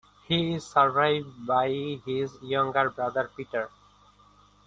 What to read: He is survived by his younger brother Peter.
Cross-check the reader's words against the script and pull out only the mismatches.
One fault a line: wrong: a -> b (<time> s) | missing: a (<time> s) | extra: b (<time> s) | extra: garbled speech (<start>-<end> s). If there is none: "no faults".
no faults